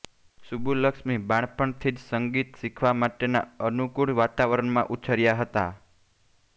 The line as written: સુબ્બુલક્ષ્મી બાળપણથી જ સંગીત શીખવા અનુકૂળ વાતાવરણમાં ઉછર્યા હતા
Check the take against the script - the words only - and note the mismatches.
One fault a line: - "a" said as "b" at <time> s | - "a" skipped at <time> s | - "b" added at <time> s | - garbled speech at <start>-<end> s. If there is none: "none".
- "માટેના" added at 3.0 s